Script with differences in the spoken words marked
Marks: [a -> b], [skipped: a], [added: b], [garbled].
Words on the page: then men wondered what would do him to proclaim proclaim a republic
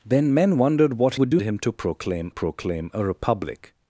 then men wondered what would do him to proclaim proclaim a republic